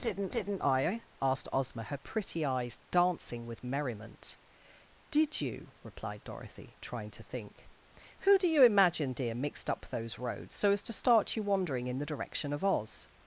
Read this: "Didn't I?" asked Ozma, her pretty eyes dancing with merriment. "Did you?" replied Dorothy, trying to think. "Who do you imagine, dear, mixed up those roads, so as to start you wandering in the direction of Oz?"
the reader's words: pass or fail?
fail